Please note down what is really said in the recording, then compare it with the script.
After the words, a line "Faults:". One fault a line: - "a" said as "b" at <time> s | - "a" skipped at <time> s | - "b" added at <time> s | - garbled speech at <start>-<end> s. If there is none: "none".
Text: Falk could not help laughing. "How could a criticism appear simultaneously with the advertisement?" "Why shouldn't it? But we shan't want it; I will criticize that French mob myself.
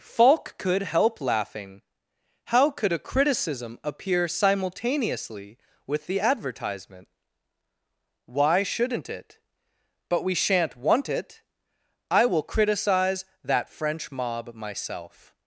Falk could help laughing. "How could a criticism appear simultaneously with the advertisement?" "Why shouldn't it? But we shan't want it; I will criticize that French mob myself.
Faults:
- "not" skipped at 0.8 s